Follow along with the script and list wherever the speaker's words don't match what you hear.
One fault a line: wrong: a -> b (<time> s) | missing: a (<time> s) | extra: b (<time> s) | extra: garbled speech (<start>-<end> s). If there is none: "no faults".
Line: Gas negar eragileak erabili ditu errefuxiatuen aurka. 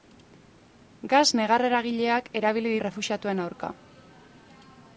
missing: ditu (2.8 s)